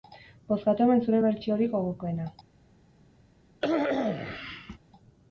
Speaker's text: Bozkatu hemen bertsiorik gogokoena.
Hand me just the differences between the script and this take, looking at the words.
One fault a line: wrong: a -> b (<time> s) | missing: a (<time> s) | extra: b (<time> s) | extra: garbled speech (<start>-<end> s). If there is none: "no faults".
extra: zure (1.1 s)